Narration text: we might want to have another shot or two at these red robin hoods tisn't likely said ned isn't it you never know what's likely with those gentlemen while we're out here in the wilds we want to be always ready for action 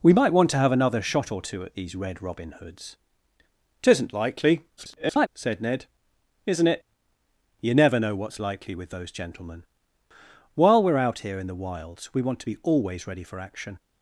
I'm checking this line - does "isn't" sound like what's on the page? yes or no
yes